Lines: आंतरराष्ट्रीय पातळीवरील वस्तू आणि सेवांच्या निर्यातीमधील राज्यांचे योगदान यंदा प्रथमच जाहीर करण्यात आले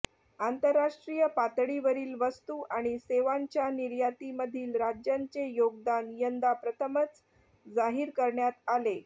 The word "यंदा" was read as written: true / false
true